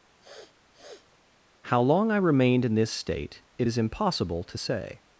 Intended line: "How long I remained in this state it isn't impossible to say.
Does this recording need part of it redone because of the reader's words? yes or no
yes